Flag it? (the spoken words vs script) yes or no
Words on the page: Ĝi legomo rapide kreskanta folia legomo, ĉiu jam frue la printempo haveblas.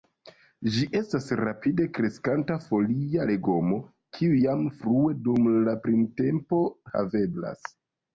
yes